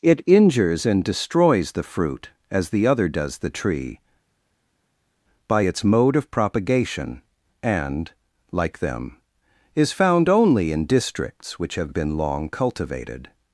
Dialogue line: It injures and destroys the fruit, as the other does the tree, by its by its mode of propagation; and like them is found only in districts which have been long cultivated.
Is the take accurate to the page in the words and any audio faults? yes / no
no